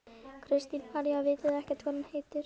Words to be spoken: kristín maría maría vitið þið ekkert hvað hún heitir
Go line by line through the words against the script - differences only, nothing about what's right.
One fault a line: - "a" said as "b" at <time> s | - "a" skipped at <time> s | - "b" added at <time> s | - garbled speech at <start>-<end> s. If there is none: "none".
- "maría" skipped at 1.2 s